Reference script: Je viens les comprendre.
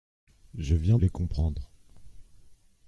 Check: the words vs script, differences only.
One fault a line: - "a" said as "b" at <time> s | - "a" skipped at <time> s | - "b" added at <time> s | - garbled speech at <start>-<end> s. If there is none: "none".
none